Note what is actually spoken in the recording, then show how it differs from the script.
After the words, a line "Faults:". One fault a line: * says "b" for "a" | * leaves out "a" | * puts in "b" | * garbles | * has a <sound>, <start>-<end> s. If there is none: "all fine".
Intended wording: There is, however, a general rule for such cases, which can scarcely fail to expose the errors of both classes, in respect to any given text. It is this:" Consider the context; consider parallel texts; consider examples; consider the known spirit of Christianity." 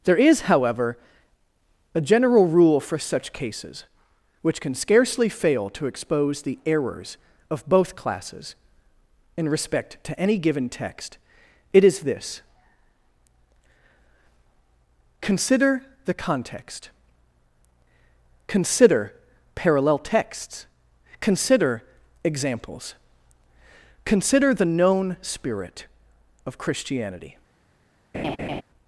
There is, however, a general rule for such cases, which can scarcely fail to expose the errors of both classes, in respect to any given text. It is this:" Consider the context; consider parallel texts; consider examples; consider the known spirit of Christianity."
Faults:
* has a laugh, 28.1-28.6 s